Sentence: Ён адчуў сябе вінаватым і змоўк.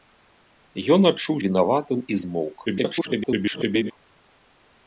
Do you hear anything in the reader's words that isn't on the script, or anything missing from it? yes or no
yes